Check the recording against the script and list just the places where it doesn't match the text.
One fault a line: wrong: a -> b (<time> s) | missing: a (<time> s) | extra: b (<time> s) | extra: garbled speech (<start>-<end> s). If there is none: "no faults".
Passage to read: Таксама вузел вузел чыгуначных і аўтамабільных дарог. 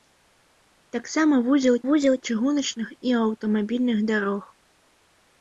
no faults